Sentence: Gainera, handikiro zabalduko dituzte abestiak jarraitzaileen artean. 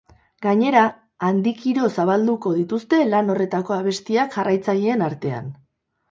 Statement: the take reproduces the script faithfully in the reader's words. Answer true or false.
false